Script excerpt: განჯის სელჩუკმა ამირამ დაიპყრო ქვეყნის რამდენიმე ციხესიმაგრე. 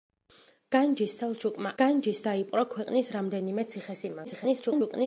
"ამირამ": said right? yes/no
no